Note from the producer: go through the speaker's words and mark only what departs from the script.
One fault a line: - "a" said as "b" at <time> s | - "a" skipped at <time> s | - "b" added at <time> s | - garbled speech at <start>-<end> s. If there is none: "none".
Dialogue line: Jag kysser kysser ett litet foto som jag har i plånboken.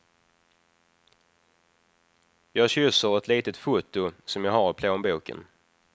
- "kysser" skipped at 3.2 s